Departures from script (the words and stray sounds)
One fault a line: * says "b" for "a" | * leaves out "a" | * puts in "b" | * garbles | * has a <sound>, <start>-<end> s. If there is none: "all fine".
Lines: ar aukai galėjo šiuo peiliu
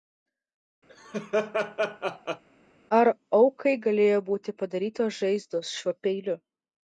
* has a laugh, 0.9-2.4 s
* puts in "būti padarytos žaizdos"